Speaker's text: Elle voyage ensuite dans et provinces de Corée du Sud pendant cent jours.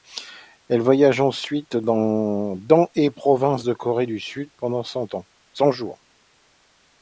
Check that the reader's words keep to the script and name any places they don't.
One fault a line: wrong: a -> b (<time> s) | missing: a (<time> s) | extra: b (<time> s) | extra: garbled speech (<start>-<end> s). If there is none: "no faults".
no faults